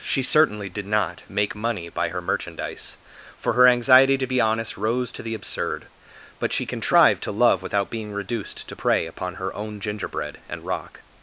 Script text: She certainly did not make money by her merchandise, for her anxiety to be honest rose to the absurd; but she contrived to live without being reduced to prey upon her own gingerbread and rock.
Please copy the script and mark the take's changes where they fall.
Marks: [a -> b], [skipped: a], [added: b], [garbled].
She certainly did not make money by her merchandise, for her anxiety to be honest rose to the absurd; but she contrived to [live -> love] without being reduced to prey upon her own gingerbread and rock.